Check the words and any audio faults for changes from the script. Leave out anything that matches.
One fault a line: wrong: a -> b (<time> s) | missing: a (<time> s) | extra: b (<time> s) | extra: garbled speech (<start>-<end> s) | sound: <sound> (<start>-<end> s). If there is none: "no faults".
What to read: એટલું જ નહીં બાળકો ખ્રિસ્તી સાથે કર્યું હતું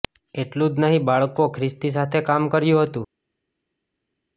extra: કામ (2.2 s)